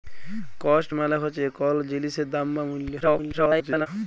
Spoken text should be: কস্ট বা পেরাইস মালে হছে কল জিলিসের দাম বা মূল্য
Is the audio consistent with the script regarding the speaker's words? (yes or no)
no